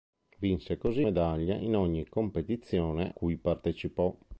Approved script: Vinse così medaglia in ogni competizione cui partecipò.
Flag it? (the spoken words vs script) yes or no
no